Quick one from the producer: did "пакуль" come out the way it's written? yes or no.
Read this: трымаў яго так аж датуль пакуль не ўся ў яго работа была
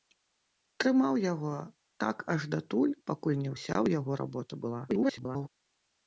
yes